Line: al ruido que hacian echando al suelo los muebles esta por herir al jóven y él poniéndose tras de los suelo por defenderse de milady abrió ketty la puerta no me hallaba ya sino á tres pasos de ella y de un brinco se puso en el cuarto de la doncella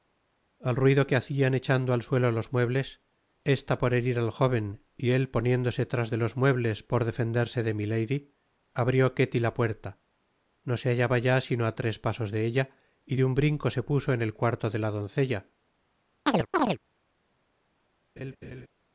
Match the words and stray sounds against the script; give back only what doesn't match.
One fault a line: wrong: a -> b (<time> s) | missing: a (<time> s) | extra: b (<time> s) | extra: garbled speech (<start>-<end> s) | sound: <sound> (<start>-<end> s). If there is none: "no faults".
wrong: suelo -> muebles (6.4 s)
wrong: me -> se (10.8 s)
sound: chirp (16.3-16.8 s)
sound: laugh (18.2-18.7 s)